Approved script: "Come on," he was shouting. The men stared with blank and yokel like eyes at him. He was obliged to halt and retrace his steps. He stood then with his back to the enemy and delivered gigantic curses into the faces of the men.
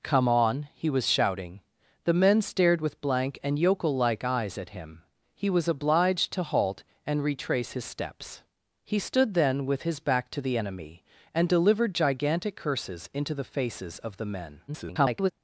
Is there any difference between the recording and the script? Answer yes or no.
yes